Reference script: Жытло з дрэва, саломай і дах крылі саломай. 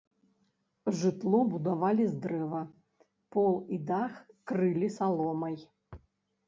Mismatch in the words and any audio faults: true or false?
true